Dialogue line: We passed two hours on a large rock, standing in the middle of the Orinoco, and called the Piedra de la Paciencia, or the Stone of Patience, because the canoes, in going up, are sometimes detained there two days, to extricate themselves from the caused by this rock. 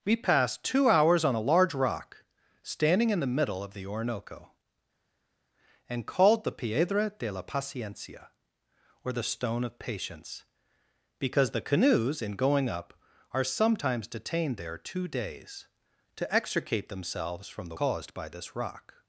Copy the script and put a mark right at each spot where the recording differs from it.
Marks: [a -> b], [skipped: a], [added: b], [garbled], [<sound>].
We passed two hours on a large rock, standing in the middle of the Orinoco, and called the Piedra de la Paciencia, or the Stone of Patience, because the canoes, in going up, are sometimes detained there two days, to extricate themselves from the caused by this rock.